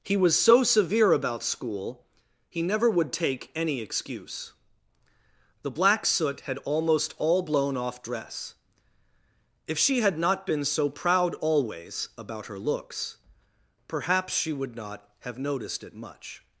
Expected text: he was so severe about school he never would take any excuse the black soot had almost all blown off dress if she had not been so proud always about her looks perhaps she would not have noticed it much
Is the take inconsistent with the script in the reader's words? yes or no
no